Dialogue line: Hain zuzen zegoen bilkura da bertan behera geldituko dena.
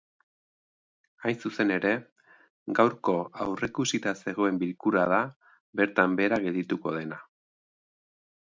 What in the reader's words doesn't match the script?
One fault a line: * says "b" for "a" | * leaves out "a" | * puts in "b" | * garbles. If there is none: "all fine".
* puts in "ere gaurko aurreikusita"